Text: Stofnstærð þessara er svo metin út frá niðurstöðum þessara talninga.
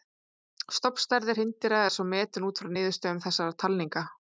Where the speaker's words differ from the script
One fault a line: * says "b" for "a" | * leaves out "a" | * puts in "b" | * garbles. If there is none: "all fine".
* says "hreindýra" for "þessara"